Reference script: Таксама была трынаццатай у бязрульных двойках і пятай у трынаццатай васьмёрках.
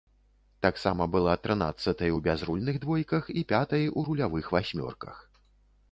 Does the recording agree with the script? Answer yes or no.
no